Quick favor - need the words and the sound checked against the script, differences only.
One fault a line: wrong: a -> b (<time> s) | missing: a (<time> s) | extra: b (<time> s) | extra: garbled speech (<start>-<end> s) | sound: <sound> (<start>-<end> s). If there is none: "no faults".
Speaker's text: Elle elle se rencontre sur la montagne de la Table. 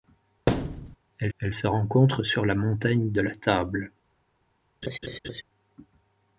sound: thud (0.5-1.0 s)
sound: laugh (4.8-5.4 s)